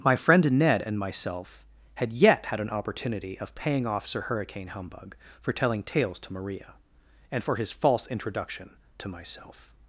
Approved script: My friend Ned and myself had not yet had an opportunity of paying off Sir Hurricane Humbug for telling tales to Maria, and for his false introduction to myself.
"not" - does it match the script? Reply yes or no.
no